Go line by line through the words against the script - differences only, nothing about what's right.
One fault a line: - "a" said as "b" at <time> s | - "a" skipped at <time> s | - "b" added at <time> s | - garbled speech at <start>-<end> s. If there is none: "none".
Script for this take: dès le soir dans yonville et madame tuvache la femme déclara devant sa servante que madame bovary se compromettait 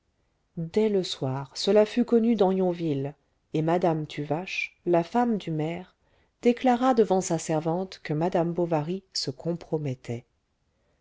- "cela fut connu" added at 1.5 s
- "du maire" added at 5.4 s